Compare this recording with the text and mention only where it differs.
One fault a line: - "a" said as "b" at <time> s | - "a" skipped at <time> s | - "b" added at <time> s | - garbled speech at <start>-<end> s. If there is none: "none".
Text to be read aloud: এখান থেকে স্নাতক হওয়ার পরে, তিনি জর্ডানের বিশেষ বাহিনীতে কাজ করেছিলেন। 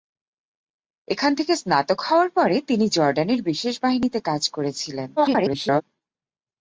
- garbled speech at 5.2-5.8 s